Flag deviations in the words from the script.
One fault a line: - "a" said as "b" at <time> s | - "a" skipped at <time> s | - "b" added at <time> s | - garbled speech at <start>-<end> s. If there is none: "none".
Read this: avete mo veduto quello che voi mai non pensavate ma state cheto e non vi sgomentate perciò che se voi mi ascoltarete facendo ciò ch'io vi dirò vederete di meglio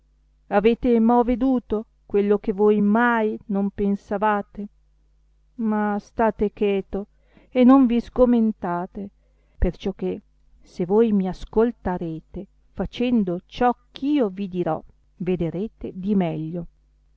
none